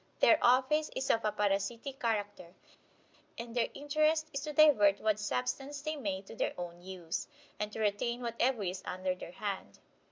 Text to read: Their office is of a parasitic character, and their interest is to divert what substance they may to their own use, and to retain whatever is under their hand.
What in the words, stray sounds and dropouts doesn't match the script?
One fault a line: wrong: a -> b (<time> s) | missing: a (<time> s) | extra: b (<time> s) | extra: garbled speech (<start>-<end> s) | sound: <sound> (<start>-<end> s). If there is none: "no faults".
no faults